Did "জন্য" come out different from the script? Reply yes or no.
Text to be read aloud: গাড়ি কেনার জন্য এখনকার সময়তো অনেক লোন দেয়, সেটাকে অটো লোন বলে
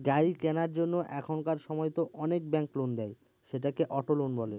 no